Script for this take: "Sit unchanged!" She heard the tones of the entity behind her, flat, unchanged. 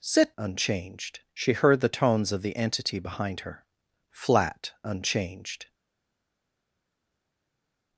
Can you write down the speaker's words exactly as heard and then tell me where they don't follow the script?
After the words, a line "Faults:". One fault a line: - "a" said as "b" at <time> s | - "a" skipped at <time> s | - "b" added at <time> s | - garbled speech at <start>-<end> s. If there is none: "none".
"Sit unchanged!" She heard the tones of the entity behind her, flat, unchanged.
Faults:
none